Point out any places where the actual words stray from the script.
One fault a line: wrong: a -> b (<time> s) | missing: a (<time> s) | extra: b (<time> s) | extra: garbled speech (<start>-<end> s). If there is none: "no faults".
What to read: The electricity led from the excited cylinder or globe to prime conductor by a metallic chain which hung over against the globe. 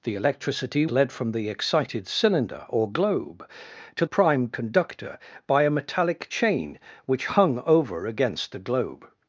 no faults